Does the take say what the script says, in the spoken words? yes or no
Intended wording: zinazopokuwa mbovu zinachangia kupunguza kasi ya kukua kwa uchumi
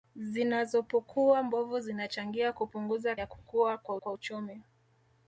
no